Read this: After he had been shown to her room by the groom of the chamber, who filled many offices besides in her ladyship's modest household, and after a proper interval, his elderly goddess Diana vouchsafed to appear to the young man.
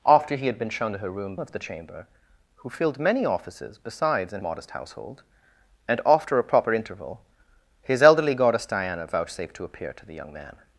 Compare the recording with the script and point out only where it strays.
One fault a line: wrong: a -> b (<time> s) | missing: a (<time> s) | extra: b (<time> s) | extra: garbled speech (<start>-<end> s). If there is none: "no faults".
missing: by the groom (1.4 s)
missing: her ladyship's (4.4 s)